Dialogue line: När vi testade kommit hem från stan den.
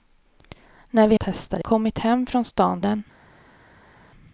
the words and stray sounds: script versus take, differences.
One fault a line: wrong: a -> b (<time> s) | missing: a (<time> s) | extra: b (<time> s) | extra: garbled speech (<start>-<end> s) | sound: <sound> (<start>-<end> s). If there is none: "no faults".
no faults